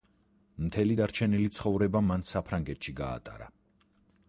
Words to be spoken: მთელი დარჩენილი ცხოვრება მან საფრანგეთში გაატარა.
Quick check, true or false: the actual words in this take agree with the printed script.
true